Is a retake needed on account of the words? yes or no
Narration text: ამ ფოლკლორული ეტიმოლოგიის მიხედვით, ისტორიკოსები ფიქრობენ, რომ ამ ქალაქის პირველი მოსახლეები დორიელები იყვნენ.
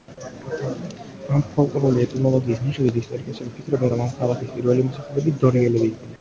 no